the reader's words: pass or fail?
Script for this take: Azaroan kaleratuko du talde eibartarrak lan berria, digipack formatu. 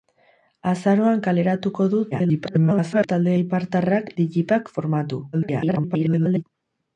fail